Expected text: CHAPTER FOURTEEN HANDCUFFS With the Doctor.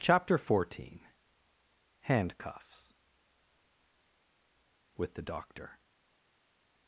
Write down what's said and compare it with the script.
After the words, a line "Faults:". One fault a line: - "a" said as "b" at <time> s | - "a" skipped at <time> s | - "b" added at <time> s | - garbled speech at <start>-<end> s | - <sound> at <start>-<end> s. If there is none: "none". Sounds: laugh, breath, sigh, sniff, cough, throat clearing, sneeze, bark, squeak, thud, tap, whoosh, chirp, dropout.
CHAPTER FOURTEEN HANDCUFFS With the Doctor.
Faults:
none